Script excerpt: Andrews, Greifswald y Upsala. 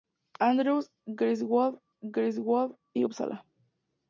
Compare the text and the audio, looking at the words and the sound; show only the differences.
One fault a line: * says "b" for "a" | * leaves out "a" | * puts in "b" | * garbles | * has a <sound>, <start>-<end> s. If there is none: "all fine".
* puts in "Greifswald"